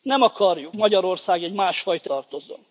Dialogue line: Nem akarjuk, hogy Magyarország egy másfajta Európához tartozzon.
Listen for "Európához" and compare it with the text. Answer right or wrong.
wrong